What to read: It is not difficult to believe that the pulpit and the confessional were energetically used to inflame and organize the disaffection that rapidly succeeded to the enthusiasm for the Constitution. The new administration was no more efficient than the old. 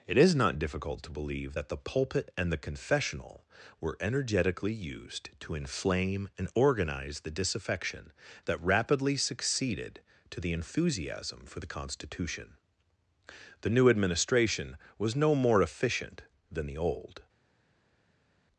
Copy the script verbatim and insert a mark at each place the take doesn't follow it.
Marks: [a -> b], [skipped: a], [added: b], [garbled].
It is not difficult to believe that the pulpit and the confessional were energetically used to inflame and organize the disaffection that rapidly succeeded to the enthusiasm for the Constitution. The new administration was no more efficient than the old.